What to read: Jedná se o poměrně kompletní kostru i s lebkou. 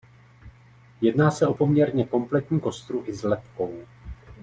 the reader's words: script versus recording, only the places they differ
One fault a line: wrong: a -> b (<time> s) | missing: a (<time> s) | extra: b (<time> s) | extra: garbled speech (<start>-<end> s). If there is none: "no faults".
no faults